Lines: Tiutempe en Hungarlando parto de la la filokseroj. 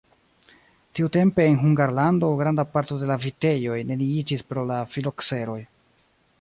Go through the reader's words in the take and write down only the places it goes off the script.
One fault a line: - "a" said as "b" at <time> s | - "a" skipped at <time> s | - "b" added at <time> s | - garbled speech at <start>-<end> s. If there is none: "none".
- "granda" added at 2.4 s
- "vitejoj neniiĝis pro" added at 3.3 s